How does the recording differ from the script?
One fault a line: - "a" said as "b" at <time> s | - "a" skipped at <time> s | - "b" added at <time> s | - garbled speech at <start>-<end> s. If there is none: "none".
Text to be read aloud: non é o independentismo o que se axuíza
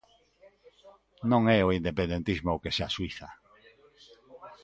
none